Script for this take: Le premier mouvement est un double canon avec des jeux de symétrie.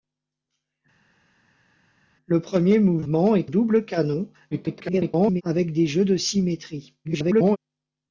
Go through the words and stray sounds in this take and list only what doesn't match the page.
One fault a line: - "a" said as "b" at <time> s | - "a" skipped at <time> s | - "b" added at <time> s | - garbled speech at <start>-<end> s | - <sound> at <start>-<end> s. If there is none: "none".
- "un" skipped at 3.5 s
- garbled speech at 4.5-5.4 s
- garbled speech at 7.0-7.6 s